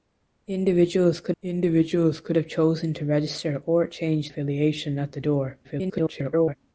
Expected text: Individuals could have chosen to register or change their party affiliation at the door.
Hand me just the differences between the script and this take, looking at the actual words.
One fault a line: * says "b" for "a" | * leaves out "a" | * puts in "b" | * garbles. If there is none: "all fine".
* puts in "individuals could"
* leaves out "their party"
* garbles